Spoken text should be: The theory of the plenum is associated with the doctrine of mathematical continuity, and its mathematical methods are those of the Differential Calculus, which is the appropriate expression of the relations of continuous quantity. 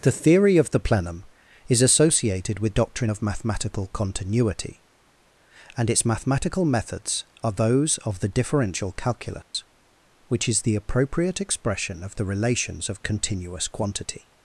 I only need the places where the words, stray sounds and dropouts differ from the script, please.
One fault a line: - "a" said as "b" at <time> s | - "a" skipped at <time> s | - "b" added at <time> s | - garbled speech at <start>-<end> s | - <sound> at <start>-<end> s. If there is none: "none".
- "the" skipped at 2.7 s
- dropout at 9.4-9.5 s